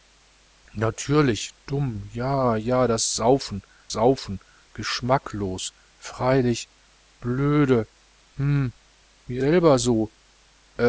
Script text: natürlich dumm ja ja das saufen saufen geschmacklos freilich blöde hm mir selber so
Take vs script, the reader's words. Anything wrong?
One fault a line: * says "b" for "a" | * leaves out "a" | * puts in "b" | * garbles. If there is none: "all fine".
all fine